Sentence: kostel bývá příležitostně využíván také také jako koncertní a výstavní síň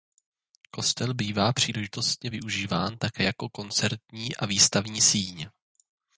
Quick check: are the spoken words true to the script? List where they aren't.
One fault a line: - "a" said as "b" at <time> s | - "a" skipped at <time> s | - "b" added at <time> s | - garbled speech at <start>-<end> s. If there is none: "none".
- "také" skipped at 3.2 s